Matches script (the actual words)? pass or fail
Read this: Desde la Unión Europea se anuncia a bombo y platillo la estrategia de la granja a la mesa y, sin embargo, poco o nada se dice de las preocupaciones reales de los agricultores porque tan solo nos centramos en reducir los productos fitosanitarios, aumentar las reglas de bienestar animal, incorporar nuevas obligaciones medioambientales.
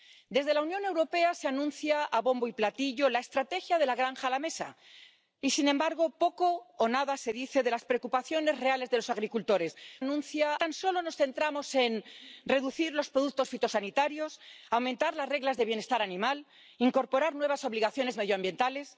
fail